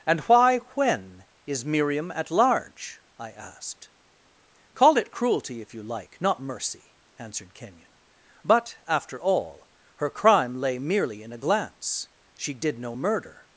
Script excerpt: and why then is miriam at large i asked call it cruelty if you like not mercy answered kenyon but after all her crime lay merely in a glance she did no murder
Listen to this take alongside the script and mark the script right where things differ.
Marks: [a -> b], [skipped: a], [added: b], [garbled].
and why [then -> when] is miriam at large i asked call it cruelty if you like not mercy answered kenyon but after all her crime lay merely in a glance she did no murder